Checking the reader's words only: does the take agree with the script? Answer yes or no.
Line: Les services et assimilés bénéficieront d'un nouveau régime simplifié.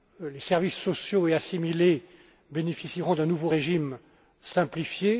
no